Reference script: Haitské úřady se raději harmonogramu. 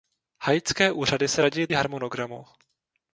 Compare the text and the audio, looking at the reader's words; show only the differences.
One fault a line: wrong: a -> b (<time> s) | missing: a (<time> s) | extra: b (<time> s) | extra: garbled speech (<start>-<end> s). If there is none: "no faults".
no faults